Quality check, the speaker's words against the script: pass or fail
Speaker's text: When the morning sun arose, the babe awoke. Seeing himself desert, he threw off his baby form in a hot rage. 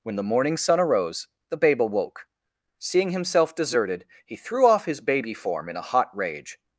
fail